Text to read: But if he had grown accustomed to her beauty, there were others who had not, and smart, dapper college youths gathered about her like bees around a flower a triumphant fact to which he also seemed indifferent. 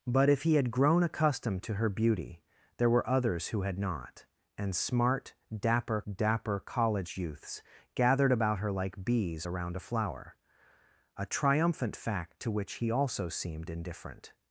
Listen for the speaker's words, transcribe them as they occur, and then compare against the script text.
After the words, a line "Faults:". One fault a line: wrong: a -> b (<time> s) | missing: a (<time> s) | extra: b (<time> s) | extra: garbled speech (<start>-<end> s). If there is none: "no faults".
But if he had grown accustomed to her beauty, there were others who had not, and smart, dapper dapper college youths gathered about her like bees around a flower a triumphant fact to which he also seemed indifferent.
Faults:
extra: dapper (6.1 s)